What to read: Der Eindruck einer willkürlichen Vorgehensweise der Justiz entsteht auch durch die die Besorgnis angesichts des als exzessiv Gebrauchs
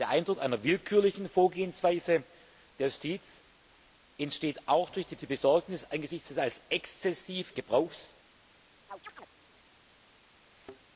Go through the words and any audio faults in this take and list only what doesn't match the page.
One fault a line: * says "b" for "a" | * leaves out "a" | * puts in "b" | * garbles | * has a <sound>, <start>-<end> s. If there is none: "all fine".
* has a chirp, 8.9-9.3 s
* has a thud, 10.5-10.8 s